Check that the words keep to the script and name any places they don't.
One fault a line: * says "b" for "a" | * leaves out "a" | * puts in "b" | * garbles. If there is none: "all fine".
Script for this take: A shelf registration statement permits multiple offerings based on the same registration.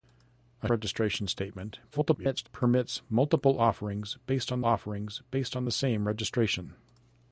* leaves out "shelf"
* garbles
* puts in "offerings based on"